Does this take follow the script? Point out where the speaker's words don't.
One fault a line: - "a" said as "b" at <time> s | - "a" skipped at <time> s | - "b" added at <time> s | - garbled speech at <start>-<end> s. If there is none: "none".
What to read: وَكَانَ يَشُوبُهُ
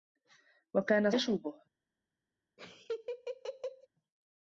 none